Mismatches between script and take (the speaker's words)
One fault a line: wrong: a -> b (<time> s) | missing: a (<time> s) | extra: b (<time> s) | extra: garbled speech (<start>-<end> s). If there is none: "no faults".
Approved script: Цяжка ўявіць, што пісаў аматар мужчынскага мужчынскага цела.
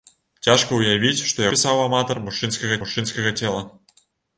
no faults